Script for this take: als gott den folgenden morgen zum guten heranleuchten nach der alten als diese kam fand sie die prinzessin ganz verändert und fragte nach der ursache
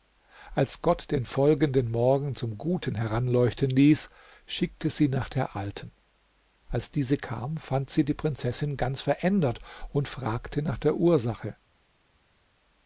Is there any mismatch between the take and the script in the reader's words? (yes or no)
yes